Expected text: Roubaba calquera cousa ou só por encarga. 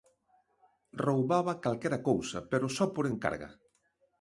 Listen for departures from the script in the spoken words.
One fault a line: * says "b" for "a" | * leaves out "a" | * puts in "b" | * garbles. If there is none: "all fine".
* says "pero" for "ou"